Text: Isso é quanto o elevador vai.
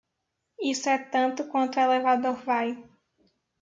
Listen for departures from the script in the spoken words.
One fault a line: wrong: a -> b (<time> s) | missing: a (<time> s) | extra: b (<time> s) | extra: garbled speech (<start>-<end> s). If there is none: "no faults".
extra: tanto (1.0 s)